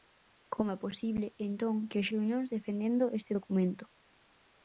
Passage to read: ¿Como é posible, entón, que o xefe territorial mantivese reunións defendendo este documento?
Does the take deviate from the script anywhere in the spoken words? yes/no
yes